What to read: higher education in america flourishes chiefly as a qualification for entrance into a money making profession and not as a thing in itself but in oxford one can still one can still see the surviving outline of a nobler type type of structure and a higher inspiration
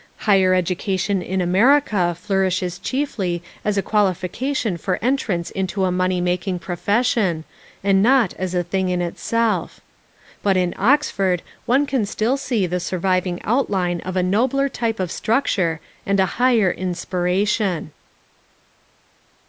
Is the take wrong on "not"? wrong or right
right